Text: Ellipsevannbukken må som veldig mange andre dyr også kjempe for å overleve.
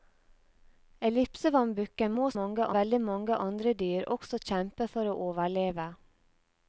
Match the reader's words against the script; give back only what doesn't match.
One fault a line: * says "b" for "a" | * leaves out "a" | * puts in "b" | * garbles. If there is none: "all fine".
* says "mange" for "som"